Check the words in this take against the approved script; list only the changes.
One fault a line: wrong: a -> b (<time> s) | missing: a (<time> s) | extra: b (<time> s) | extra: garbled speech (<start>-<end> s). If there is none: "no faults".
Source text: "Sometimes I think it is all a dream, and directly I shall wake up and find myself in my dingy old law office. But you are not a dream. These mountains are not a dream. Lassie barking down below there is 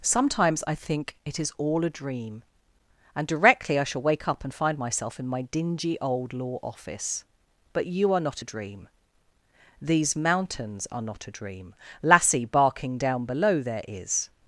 no faults